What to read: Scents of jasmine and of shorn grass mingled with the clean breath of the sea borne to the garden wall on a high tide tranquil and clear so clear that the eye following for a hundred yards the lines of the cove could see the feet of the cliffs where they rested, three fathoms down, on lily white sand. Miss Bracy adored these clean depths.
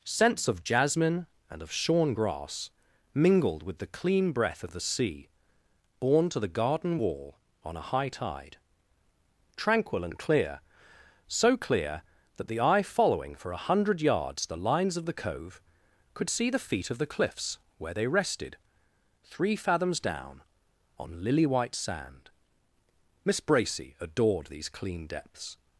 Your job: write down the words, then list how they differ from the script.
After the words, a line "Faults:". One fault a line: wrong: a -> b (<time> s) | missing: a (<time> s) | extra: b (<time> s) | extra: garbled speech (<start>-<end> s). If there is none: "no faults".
Scents of jasmine and of shorn grass mingled with the clean breath of the sea borne to the garden wall on a high tide tranquil and clear so clear that the eye following for a hundred yards the lines of the cove could see the feet of the cliffs where they rested, three fathoms down, on lily white sand. Miss Bracy adored these clean depths.
Faults:
no faults